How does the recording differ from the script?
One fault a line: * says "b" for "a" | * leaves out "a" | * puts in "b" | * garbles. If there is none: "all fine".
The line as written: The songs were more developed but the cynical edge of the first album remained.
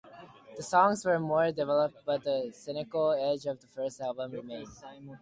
all fine